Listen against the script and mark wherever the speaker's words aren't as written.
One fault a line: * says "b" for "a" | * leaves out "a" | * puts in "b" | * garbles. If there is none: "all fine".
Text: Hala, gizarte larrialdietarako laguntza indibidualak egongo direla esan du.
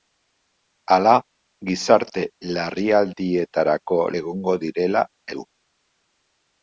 * leaves out "laguntza indibidualak"
* leaves out "esan"